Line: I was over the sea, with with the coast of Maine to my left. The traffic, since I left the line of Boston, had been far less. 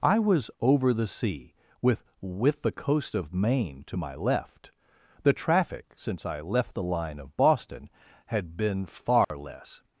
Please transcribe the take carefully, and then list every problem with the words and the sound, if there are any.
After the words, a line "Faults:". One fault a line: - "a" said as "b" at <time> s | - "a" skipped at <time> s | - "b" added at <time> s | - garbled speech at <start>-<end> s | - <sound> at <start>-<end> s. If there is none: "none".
I was over the sea, with with the coast of Maine to my left. The traffic, since I left the line of Boston, had been far less.
Faults:
- dropout at 9.2-9.3 s